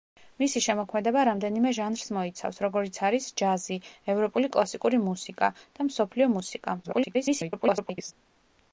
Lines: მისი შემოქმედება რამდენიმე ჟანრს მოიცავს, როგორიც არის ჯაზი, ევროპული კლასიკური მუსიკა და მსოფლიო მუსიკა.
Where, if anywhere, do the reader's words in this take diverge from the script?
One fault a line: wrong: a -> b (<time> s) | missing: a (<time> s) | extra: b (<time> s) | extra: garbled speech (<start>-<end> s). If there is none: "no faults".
extra: garbled speech (6.8-8.1 s)